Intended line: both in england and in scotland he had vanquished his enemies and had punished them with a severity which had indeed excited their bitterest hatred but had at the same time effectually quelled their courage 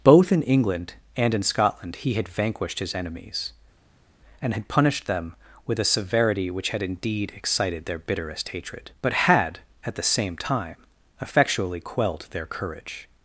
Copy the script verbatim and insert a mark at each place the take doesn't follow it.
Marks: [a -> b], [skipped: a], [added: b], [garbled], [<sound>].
both in england and in scotland he had vanquished his enemies and had punished them with a severity which had indeed excited their bitterest hatred but had at the same time effectually quelled their courage